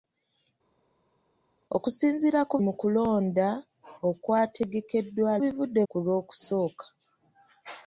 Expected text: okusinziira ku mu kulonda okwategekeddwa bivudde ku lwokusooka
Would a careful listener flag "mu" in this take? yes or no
no